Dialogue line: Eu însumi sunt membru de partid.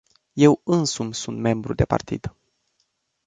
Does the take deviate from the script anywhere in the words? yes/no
no